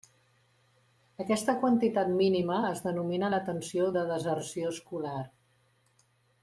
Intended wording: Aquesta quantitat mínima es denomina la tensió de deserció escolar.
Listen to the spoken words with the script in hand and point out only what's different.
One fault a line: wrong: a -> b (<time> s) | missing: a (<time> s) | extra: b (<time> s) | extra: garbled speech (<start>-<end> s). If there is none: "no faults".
no faults